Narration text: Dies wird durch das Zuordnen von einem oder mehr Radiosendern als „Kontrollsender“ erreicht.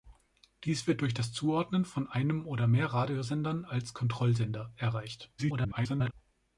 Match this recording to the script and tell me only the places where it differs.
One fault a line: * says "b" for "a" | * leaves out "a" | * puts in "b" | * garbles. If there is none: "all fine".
* garbles